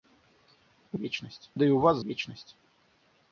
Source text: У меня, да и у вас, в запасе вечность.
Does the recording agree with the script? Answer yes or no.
no